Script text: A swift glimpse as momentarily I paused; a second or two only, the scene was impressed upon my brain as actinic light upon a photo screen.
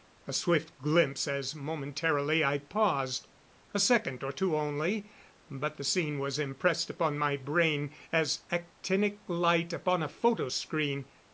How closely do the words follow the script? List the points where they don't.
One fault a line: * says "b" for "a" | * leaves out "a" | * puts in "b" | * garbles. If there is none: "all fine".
* puts in "but"